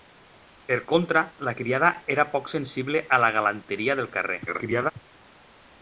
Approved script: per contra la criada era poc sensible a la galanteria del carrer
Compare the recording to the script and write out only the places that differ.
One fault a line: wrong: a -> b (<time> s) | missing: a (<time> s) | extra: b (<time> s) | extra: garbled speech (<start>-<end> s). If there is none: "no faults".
extra: garbled speech (4.5-4.9 s)